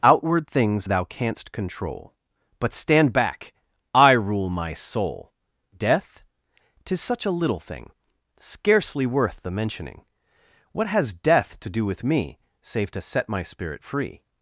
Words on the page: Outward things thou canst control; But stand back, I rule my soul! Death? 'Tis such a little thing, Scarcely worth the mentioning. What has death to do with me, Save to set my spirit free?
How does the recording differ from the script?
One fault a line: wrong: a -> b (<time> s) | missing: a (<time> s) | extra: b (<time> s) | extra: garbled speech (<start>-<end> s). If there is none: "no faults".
no faults